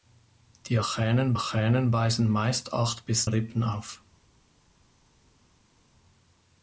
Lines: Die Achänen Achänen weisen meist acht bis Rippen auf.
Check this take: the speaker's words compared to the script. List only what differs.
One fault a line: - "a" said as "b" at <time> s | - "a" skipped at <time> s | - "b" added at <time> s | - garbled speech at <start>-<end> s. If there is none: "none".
none